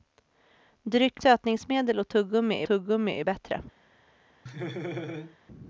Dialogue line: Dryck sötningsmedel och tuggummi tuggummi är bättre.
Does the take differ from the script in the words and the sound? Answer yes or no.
yes